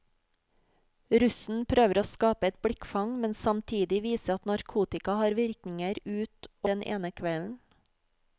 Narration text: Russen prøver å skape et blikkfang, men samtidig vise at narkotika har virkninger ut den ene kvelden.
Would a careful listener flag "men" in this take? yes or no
no